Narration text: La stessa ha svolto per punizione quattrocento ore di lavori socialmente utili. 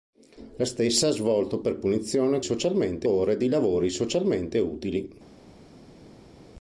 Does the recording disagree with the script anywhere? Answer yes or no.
yes